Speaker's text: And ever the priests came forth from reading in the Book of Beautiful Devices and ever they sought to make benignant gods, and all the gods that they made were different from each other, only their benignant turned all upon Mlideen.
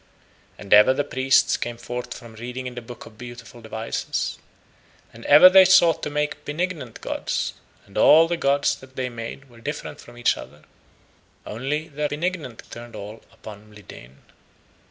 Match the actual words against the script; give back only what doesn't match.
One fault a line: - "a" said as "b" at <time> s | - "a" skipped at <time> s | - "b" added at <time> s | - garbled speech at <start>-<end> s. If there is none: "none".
none